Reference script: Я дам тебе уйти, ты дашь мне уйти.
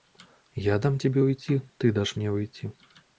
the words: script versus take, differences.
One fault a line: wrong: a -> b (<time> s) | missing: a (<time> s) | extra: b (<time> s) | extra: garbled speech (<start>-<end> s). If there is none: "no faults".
no faults